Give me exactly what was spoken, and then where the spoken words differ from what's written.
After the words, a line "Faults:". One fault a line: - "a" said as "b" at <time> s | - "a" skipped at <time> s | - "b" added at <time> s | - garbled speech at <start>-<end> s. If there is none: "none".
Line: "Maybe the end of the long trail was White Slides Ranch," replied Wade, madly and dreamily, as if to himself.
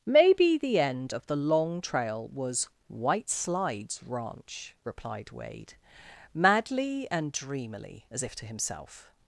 "Maybe the end of the long trail was White Slides Ranch," replied Wade, madly and dreamily, as if to himself.
Faults:
none